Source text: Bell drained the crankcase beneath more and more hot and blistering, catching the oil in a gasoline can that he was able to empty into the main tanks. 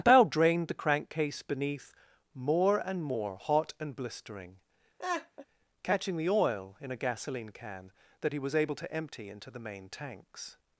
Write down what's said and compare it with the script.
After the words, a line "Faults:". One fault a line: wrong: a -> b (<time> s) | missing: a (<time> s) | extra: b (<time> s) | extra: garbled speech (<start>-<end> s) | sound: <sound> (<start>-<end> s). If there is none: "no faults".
Bell drained the crankcase beneath more and more hot and blistering, catching the oil in a gasoline can that he was able to empty into the main tanks.
Faults:
sound: laugh (5.0-5.5 s)